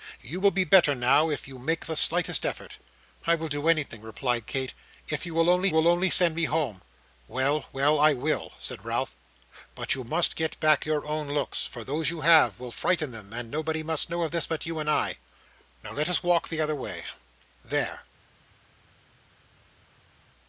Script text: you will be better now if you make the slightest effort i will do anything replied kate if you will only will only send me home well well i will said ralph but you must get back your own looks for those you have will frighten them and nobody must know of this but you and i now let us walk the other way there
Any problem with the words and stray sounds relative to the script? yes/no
no